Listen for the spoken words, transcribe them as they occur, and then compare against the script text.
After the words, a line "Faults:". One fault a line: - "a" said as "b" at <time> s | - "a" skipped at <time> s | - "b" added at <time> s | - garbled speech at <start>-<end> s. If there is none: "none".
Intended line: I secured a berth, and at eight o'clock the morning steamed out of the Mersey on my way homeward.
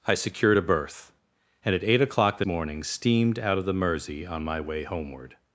I secured a berth, and at eight o'clock the morning steamed out of the Mersey on my way homeward.
Faults:
none